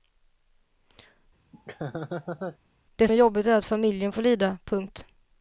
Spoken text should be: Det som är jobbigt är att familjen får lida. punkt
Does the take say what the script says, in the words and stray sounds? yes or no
no